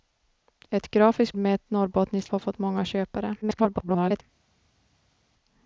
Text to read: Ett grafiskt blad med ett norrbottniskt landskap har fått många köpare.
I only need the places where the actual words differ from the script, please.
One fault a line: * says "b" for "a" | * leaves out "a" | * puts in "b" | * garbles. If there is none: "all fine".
* leaves out "blad"
* leaves out "landskap"
* garbles